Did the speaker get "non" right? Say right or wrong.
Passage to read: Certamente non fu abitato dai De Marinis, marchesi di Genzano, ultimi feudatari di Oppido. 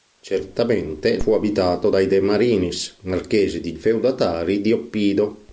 wrong